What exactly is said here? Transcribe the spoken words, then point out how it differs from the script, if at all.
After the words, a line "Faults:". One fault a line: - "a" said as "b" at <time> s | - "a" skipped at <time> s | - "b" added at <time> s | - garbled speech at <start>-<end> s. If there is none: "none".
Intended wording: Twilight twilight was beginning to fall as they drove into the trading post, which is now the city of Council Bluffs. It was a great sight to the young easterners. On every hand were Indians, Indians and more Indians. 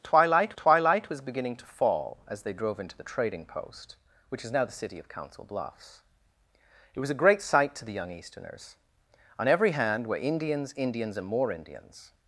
Twilight twilight was beginning to fall as they drove into the trading post, which is now the city of Council Bluffs. It was a great sight to the young easterners. On every hand were Indians, Indians and more Indians.
Faults:
none